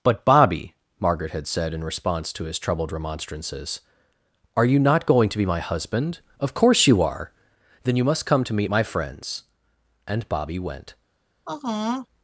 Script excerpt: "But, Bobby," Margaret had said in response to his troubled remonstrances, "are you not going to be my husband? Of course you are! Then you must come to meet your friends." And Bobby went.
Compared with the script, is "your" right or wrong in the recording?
wrong